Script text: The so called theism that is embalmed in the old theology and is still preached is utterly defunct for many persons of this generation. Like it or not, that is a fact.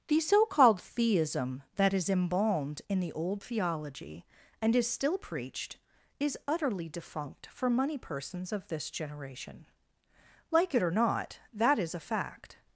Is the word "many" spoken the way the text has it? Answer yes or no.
no